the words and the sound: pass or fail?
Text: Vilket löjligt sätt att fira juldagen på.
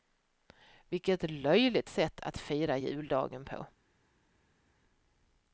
pass